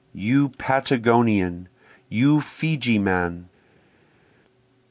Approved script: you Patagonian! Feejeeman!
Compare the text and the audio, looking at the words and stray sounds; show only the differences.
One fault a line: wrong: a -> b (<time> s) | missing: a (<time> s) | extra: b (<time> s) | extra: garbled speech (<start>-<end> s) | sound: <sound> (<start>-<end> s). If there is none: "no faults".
extra: you (2.1 s)